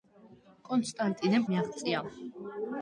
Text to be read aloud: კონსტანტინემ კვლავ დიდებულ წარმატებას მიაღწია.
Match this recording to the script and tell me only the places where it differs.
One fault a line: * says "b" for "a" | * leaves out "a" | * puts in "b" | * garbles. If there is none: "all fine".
* leaves out "კვლავ დიდებულ წარმატებას"